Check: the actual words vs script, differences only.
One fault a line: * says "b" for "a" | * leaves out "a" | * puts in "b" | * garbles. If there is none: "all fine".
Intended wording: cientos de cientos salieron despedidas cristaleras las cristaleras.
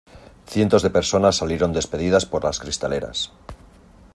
* says "personas" for "cientos"
* says "por" for "cristaleras"